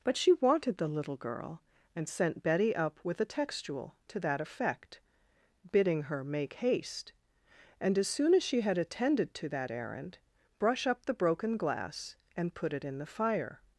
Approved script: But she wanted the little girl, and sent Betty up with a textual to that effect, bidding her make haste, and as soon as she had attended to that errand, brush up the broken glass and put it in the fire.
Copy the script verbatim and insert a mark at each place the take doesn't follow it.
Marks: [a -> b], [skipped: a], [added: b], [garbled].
But she wanted the little girl, and sent Betty up with a textual to that effect, bidding her make haste, and as soon as she had attended to that errand, brush up the broken glass and put it in the fire.